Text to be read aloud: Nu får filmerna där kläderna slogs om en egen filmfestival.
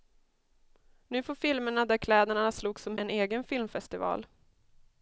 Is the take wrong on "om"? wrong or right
right